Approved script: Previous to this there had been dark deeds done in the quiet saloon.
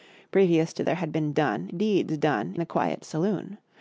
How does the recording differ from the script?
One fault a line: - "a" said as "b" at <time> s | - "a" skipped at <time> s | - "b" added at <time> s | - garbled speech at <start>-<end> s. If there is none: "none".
- "this" skipped at 0.8 s
- "dark" said as "done" at 1.3 s
- "in" skipped at 2.5 s